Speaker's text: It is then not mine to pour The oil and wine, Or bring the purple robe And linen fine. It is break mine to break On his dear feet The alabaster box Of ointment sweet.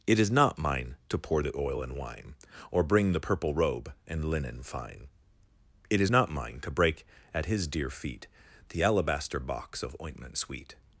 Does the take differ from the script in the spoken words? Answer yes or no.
yes